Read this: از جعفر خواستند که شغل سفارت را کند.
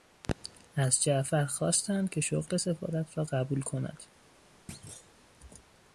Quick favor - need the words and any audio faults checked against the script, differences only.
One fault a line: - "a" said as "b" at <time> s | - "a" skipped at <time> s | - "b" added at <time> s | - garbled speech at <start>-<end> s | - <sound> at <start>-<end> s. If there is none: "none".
- "قبول" added at 3.2 s
- thud at 4.7-5.1 s